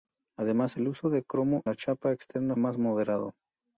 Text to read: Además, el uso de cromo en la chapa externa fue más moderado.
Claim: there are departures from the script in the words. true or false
true